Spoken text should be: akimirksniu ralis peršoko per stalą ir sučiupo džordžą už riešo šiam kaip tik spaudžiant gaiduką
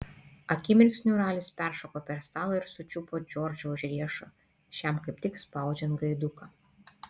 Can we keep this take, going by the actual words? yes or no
yes